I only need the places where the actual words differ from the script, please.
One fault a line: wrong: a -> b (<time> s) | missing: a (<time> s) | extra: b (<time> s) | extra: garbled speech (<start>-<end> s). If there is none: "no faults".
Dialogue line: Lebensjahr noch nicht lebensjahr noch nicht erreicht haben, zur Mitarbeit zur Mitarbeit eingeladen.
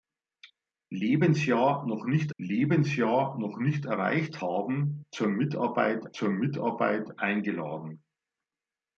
no faults